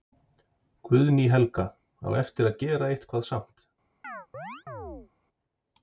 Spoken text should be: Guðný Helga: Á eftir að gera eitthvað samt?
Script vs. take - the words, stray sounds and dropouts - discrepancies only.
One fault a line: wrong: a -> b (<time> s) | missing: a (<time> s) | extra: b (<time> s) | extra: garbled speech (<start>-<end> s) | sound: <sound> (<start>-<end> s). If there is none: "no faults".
sound: chirp (4.0-5.1 s)